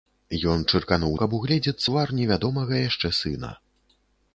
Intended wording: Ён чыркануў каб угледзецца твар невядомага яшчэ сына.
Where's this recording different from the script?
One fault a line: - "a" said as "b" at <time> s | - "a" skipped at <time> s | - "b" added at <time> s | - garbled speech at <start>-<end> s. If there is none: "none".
none